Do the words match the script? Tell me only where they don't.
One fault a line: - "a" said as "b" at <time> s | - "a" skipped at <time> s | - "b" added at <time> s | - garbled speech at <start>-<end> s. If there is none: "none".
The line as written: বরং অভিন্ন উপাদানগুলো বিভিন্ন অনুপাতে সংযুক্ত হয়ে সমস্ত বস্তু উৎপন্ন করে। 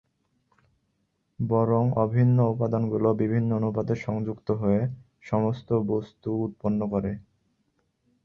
none